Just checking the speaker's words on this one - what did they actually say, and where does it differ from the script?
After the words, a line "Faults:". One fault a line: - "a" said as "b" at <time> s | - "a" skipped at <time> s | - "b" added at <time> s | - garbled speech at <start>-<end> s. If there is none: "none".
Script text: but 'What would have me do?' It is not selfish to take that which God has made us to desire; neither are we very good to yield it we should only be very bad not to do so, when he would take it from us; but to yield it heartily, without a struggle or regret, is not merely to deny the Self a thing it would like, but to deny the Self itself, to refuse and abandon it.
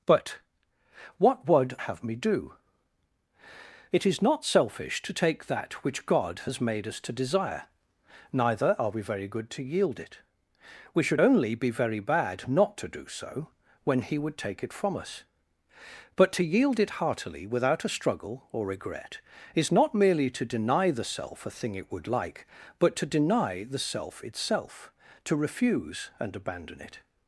but 'What would have me do?' It is not selfish to take that which God has made us to desire; neither are we very good to yield it we should only be very bad not to do so, when he would take it from us; but to yield it heartily, without a struggle or regret, is not merely to deny the Self a thing it would like, but to deny the Self itself, to refuse and abandon it.
Faults:
none